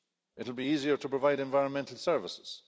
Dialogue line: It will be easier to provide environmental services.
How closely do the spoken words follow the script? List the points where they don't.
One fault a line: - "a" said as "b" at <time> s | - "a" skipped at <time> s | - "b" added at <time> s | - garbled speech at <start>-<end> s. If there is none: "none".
none